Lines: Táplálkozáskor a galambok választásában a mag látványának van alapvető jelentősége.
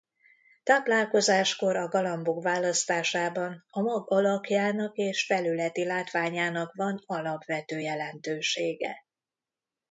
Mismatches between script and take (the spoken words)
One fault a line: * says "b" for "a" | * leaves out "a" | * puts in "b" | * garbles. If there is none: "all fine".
* puts in "alakjának és felületi"